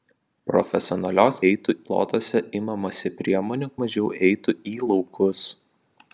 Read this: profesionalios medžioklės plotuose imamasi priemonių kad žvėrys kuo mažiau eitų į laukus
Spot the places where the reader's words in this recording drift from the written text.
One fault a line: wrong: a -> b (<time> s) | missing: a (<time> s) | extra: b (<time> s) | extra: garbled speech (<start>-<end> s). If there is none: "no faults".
wrong: medžioklės -> eitų (1.5 s)
missing: kad žvėrys kuo (3.7 s)